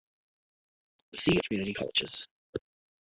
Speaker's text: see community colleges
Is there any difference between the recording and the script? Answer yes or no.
no